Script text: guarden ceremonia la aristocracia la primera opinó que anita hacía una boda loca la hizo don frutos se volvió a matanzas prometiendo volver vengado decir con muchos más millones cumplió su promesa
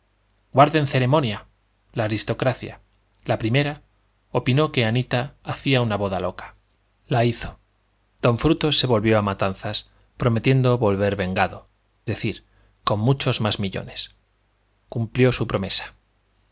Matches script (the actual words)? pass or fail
pass